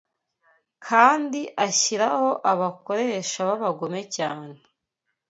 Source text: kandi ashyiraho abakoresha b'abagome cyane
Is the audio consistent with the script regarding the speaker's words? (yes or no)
yes